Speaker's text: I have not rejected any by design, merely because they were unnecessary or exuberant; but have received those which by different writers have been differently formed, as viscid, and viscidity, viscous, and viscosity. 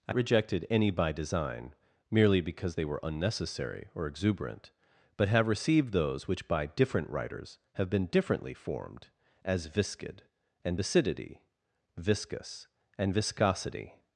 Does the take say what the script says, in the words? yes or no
no